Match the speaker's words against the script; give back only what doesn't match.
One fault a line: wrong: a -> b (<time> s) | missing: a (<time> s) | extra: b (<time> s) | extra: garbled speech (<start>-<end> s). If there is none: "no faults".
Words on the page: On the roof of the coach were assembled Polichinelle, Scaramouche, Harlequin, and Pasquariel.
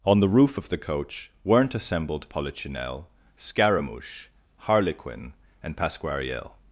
wrong: were -> weren't (1.4 s)